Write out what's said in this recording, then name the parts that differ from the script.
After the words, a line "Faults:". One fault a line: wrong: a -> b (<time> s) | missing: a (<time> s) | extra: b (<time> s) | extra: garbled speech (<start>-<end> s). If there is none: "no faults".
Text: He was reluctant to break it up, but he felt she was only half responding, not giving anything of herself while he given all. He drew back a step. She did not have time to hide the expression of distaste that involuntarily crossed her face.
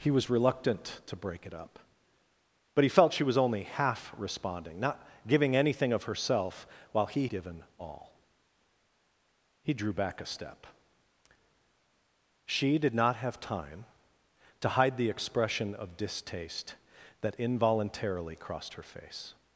He was reluctant to break it up, but he felt she was only half responding, not giving anything of herself while he given all. He drew back a step. She did not have time to hide the expression of distaste that involuntarily crossed her face.
Faults:
no faults